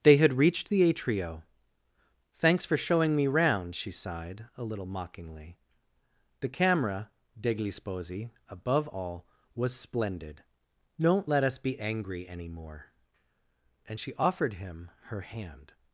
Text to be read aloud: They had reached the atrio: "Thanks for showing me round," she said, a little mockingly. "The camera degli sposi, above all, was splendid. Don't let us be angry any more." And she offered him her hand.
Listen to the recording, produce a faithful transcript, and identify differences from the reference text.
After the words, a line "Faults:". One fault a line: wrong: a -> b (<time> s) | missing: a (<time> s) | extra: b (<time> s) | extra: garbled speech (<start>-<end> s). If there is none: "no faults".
They had reached the atrio: "Thanks for showing me round," she sighed, a little mockingly. "The camera degli sposi, above all, was splendid. Don't let us be angry any more." And she offered him her hand.
Faults:
wrong: said -> sighed (3.9 s)